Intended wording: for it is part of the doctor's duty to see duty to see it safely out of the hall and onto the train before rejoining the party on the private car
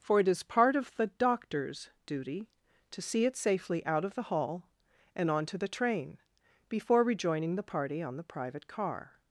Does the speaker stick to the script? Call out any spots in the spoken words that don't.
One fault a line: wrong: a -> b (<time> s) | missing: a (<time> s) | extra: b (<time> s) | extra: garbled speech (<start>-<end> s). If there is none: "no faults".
missing: duty to see (3.2 s)